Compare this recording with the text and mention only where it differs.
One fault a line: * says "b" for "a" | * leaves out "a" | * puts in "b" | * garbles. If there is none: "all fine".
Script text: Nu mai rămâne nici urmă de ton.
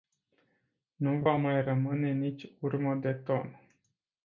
* puts in "va"